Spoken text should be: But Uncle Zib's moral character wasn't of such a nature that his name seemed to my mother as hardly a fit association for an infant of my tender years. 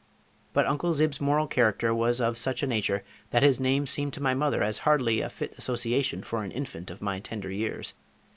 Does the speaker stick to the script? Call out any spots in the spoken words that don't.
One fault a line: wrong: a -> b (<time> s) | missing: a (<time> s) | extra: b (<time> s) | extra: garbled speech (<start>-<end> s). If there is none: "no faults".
wrong: wasn't -> was (1.9 s)